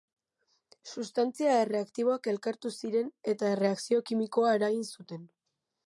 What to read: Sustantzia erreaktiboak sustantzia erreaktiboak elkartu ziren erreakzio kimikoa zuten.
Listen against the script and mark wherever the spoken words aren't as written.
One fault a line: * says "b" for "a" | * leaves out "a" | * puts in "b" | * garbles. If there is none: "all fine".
* leaves out "sustantzia erreaktiboak"
* puts in "eta"
* puts in "eragin"